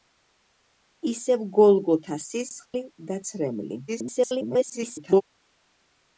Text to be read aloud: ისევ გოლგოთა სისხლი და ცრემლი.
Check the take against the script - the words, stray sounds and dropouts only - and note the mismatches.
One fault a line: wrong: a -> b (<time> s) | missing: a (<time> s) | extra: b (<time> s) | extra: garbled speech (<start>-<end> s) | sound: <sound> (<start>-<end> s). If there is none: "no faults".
sound: dropout (2.7-2.7 s)
extra: garbled speech (3.9-5.2 s)